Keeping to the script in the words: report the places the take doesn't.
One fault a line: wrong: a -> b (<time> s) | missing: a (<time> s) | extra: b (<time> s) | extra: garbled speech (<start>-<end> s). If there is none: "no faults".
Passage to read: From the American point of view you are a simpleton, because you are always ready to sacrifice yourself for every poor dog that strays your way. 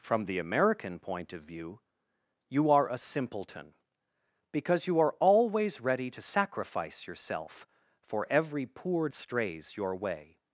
missing: dog that (9.1 s)